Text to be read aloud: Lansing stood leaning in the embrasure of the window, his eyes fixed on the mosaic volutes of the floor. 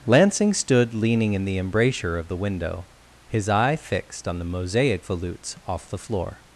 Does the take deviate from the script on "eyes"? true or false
true